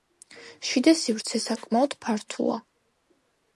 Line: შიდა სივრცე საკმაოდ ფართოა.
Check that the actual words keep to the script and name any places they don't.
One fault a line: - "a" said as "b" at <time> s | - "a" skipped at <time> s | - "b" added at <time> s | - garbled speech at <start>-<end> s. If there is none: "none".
none